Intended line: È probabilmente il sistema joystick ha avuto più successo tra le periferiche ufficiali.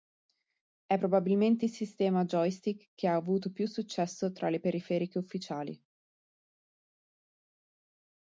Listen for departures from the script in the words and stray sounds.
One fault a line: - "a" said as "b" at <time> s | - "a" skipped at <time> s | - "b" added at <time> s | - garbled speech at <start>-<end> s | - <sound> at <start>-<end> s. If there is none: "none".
- "che" added at 2.9 s